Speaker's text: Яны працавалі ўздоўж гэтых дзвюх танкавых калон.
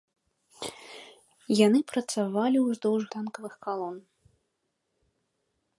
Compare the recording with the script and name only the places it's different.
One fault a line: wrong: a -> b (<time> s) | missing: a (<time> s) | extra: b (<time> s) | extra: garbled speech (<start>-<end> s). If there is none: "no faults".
missing: гэтых дзвюх (3.0 s)